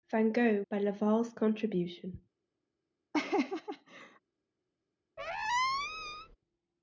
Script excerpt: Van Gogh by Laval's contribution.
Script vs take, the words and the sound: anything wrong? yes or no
yes